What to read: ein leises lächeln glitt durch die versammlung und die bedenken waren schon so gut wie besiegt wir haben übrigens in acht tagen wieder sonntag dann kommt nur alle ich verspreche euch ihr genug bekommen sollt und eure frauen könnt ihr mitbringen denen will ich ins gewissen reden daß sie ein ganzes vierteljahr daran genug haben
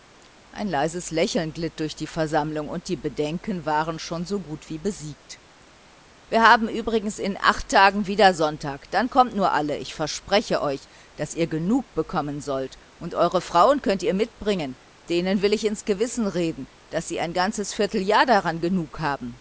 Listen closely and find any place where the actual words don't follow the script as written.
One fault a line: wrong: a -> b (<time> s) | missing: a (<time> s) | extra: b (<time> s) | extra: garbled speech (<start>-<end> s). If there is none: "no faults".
extra: daß (11.2 s)